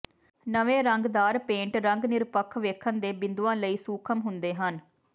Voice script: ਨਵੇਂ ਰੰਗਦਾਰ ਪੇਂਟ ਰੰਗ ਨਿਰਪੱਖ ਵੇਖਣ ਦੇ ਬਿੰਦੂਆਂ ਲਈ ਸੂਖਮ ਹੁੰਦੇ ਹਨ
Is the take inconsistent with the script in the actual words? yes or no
no